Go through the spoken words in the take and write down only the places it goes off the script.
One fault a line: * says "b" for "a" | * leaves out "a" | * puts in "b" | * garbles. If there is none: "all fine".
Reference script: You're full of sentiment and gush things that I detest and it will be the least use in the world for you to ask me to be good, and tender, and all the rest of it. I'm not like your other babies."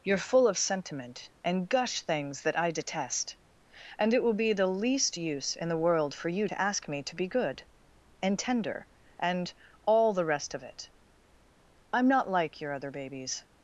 all fine